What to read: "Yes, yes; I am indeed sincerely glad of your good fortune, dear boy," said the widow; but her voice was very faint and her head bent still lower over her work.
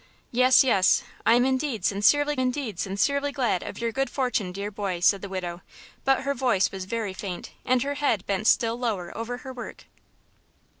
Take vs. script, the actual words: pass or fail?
fail